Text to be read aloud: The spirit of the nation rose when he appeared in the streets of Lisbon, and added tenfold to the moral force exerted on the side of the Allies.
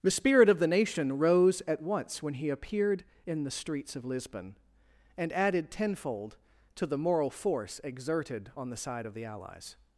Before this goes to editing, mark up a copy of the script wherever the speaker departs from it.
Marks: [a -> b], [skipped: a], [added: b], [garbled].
The spirit of the nation rose [added: at once] when he appeared in the streets of Lisbon, and added tenfold to the moral force exerted on the side of the Allies.